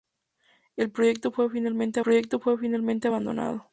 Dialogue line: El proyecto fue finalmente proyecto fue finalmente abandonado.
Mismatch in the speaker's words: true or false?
false